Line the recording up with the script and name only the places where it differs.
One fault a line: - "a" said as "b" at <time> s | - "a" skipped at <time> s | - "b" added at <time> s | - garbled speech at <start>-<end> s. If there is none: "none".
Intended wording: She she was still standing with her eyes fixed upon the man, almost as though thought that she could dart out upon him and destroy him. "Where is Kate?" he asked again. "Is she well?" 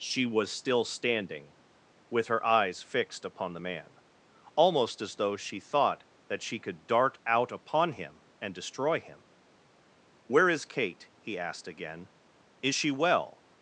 - "she" skipped at 0.2 s
- "she" added at 5.4 s